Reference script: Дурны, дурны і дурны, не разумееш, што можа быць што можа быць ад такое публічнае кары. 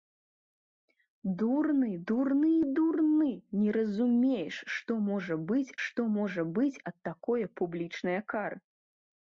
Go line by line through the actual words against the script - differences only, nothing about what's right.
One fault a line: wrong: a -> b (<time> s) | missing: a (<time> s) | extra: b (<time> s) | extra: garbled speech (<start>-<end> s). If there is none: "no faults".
no faults